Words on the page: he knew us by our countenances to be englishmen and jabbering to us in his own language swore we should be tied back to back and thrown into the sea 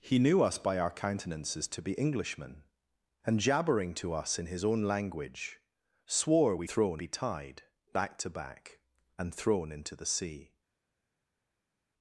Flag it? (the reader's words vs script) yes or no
yes